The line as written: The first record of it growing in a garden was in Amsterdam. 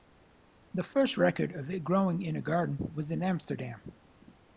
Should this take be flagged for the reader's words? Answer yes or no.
no